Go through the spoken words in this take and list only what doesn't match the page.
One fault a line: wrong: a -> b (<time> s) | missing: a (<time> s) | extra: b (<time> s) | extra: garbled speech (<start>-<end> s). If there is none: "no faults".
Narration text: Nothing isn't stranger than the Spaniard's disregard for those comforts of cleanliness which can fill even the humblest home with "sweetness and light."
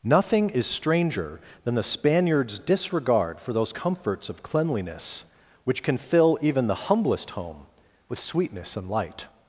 wrong: isn't -> is (0.5 s)